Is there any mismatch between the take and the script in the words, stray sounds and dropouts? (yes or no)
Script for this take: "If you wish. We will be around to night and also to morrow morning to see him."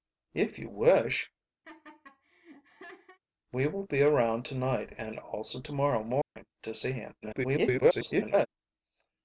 yes